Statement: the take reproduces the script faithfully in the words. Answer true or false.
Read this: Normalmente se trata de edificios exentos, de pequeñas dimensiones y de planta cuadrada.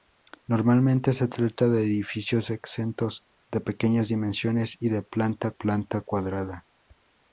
false